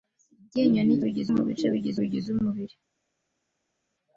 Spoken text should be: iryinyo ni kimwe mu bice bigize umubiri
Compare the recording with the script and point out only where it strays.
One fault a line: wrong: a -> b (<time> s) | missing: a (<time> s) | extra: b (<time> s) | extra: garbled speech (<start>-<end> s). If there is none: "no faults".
wrong: kimwe -> bigize (1.0 s)
extra: bigize (2.0 s)